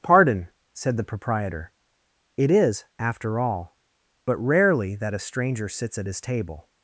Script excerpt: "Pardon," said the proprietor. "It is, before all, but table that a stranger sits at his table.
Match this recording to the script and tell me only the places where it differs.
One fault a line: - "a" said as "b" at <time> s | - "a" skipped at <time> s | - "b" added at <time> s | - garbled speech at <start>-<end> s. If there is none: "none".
- "before" said as "after" at 3.0 s
- "table" said as "rarely" at 4.4 s